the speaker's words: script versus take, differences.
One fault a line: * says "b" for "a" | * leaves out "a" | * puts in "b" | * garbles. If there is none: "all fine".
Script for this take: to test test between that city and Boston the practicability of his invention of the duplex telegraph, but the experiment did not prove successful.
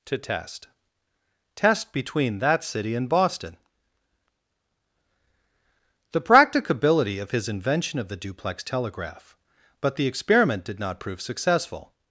all fine